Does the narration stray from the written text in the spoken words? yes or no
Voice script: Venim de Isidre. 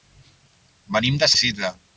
no